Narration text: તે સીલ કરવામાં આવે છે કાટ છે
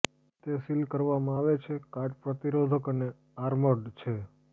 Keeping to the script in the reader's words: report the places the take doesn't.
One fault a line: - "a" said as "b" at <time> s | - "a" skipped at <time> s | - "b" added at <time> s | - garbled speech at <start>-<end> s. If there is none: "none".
- "પ્રતિરોધક અને આર્મર્ડ" added at 2.2 s